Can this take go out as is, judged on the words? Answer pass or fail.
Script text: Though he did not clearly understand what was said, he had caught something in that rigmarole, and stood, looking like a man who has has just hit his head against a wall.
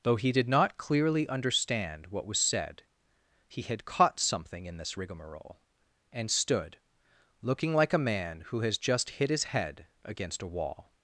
fail